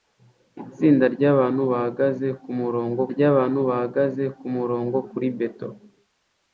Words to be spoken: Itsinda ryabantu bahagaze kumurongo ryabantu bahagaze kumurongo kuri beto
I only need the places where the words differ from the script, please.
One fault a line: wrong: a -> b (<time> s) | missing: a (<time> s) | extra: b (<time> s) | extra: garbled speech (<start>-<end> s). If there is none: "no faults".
no faults